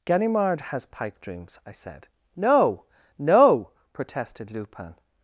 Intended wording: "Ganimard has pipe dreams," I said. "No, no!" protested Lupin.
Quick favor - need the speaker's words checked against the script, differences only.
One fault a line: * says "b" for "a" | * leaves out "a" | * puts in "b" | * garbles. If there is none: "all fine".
all fine